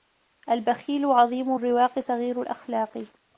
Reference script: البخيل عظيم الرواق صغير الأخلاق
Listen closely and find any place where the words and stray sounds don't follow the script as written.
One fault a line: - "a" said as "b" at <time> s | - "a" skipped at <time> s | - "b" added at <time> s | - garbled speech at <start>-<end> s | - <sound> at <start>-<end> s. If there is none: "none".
none